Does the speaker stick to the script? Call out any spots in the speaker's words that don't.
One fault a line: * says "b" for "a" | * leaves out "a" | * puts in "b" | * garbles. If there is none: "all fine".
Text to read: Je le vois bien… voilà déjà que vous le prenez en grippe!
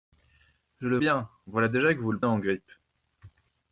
* leaves out "vois"
* leaves out "prenez"